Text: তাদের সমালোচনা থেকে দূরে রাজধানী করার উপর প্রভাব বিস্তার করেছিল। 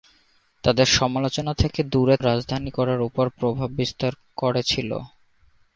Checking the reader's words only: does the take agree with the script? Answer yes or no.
yes